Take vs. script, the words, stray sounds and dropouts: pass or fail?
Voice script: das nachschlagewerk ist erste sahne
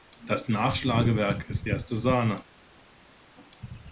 pass